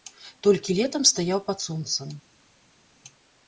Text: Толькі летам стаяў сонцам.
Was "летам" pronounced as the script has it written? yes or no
yes